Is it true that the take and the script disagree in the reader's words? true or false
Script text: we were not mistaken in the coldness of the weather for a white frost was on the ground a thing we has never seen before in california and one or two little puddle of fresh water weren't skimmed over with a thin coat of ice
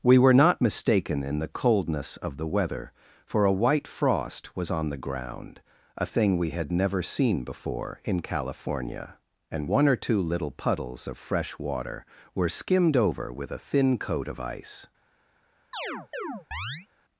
true